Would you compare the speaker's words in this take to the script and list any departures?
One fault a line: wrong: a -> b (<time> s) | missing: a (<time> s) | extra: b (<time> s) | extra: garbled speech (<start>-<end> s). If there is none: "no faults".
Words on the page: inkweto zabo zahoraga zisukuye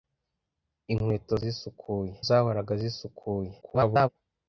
wrong: zabo -> zisukuye (1.4 s)
extra: garbled speech (3.6-4.1 s)